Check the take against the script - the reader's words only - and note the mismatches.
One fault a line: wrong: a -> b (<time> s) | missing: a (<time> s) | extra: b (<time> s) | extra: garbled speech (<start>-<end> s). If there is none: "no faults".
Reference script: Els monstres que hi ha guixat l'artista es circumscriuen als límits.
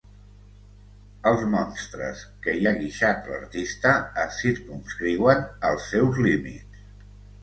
extra: seus (5.9 s)